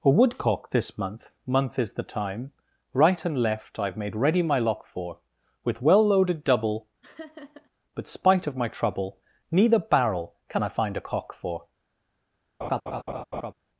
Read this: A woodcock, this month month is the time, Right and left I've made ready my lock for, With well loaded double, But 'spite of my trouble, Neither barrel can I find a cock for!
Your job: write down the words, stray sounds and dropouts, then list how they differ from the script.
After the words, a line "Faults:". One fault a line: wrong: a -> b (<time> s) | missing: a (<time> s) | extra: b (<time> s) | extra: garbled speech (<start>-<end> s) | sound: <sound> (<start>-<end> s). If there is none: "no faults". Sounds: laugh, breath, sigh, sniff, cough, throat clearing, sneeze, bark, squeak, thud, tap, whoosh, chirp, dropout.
A woodcock, this month month is the time, Right and left I've made ready my lock for, With well loaded double, But 'spite of my trouble, Neither barrel can I find a cock for!
Faults:
sound: laugh (7.0-7.7 s)
sound: laugh (12.6-13.5 s)